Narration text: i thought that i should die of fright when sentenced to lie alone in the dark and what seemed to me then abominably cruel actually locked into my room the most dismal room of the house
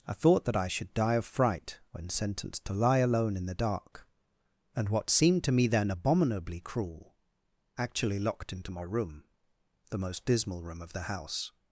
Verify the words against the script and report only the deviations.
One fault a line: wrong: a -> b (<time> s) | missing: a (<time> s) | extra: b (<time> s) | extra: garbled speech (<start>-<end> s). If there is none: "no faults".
no faults